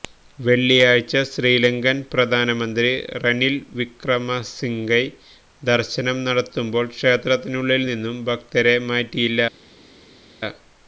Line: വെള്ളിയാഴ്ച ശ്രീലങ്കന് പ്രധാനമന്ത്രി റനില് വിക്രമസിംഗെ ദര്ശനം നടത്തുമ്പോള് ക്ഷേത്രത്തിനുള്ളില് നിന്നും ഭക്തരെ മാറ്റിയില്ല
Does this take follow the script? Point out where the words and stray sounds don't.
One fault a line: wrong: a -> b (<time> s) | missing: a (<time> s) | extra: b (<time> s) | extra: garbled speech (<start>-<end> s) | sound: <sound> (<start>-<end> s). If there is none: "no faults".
no faults